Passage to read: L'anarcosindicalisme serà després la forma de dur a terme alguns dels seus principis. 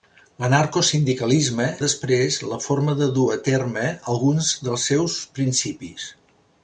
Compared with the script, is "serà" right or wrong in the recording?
wrong